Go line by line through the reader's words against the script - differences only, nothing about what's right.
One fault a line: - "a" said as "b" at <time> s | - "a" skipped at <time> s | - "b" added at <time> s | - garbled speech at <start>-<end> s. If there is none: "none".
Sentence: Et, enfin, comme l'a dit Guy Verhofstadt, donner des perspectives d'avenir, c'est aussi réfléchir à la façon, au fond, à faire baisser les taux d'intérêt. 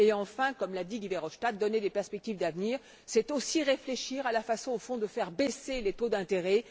- "à" said as "de" at 5.0 s